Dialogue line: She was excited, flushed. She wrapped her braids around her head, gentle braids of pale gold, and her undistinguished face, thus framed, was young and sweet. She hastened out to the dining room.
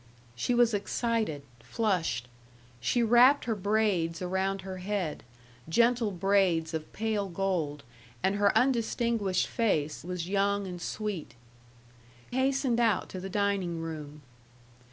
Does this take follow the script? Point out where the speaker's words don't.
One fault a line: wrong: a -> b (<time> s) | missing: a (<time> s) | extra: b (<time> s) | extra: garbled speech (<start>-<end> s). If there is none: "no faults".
missing: thus framed (10.0 s)
missing: She (11.3 s)